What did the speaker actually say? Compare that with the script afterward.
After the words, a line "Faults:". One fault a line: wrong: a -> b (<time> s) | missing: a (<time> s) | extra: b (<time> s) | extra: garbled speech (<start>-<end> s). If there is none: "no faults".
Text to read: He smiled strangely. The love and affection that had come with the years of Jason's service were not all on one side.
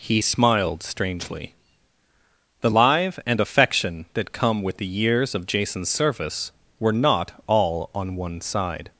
He smiled strangely. The live and affection that come with the years of Jason's service were not all on one side.
Faults:
wrong: love -> live (2.7 s)
missing: had (4.3 s)